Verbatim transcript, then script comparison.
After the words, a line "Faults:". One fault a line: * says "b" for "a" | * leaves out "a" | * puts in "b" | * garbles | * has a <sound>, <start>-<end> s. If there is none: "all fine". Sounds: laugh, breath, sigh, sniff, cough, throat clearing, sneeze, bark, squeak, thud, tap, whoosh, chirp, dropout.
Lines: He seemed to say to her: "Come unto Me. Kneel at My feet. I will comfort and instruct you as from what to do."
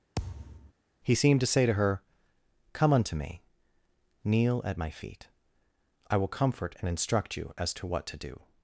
He seemed to say to her: "Come unto Me. Kneel at My feet. I will comfort and instruct you as to what to do."
Faults:
* has a thud, 0.1-0.7 s
* says "to" for "from"